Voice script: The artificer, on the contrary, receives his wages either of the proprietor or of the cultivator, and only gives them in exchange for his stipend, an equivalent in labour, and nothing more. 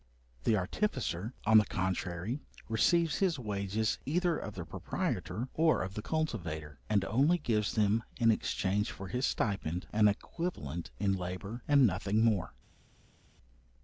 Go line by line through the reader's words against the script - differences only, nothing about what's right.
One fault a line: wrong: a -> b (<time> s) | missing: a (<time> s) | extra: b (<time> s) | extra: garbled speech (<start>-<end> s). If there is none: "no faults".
no faults